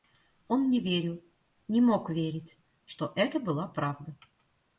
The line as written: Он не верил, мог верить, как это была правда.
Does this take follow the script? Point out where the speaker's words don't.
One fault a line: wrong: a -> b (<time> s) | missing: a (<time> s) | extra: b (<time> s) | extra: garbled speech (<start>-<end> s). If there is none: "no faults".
extra: не (1.7 s)
wrong: как -> что (2.9 s)